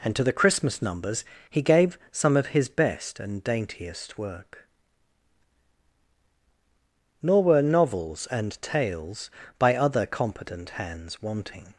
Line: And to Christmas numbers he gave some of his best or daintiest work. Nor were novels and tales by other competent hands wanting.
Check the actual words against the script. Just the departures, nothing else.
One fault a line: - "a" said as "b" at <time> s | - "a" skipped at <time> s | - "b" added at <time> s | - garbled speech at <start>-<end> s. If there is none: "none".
- "the" added at 0.2 s
- "or" said as "and" at 3.2 s